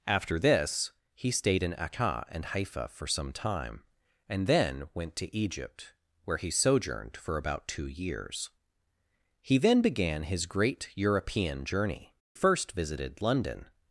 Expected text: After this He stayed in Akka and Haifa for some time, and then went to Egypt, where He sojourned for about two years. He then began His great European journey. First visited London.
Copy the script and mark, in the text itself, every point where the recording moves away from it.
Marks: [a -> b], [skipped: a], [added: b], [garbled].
After this He stayed in Akka and Haifa for some time, and then went to Egypt, where He sojourned for about two years. He then began His great European journey. First visited London.